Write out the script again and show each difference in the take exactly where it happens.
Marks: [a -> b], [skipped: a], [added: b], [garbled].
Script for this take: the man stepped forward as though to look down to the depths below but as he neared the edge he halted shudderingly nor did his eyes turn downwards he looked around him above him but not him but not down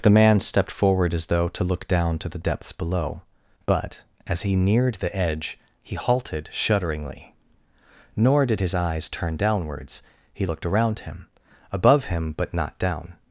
the man stepped forward as though to look down to the depths below but as he neared the edge he halted shudderingly nor did his eyes turn downwards he looked around him above him but not [skipped: him but not] down